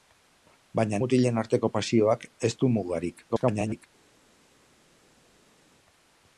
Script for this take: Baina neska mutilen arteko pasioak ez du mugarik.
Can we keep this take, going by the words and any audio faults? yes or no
no